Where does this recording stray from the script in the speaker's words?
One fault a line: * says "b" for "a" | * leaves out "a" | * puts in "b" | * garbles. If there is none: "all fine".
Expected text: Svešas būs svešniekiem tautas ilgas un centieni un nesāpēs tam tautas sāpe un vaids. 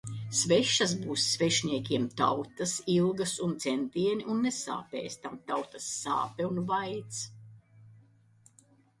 all fine